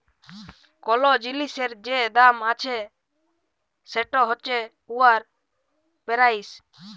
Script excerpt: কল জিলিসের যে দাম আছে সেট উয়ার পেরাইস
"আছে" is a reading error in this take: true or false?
false